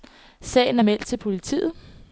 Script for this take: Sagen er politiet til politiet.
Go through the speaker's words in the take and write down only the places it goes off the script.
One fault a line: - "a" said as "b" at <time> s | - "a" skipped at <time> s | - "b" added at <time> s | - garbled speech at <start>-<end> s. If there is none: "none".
- "politiet" said as "meldt" at 0.8 s